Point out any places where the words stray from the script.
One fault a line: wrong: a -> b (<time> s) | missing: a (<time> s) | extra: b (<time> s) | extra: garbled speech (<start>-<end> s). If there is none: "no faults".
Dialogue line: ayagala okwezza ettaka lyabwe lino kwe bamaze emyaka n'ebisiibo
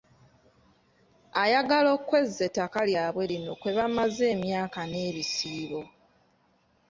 no faults